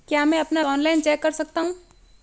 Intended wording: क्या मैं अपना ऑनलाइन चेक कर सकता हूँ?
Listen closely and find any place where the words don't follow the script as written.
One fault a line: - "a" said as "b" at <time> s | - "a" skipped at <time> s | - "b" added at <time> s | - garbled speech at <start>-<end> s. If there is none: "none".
none